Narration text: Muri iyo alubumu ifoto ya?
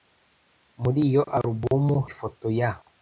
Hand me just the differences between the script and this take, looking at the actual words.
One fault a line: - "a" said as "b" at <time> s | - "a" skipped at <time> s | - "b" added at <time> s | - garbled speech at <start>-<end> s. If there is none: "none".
none